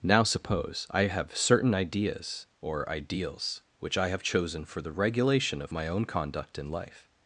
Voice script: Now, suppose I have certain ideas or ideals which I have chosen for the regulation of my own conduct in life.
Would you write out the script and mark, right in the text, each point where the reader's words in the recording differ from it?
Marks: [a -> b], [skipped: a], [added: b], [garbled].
Now, suppose I have certain ideas or ideals which I have chosen for the regulation of my own conduct in life.